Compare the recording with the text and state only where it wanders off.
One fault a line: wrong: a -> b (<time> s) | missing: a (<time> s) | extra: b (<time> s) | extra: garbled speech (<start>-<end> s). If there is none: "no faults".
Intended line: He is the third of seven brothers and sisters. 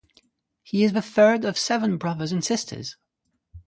no faults